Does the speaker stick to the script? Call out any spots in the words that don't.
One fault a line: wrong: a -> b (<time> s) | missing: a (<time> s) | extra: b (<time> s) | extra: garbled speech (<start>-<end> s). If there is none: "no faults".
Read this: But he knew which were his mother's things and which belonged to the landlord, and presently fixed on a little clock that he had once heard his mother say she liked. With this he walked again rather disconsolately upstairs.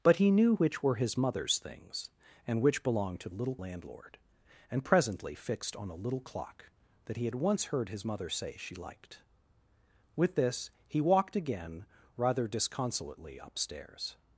wrong: the -> little (3.3 s)